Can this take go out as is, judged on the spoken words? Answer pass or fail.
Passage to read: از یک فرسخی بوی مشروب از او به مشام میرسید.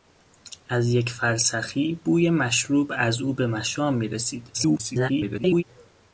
fail